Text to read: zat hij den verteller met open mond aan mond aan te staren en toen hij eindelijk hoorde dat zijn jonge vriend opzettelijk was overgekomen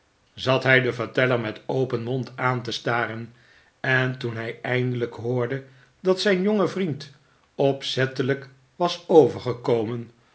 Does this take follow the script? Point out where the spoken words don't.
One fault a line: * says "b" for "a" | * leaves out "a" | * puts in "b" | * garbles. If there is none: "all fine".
* leaves out "mond aan"